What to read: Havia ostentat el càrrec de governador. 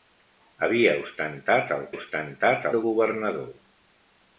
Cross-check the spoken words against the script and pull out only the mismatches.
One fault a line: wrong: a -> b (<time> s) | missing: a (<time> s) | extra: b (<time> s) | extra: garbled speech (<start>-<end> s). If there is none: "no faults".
wrong: càrrec -> ostentat (2.0 s)